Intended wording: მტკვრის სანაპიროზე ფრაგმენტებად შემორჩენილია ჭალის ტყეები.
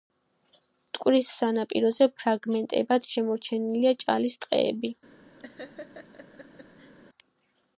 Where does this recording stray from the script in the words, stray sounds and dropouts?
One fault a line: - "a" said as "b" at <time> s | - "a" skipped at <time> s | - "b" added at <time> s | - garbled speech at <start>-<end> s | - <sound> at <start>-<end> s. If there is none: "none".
- laugh at 5.4-6.9 s